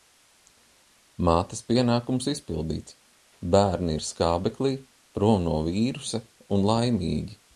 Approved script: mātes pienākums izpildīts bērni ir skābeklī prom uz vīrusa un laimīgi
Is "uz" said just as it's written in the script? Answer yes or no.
no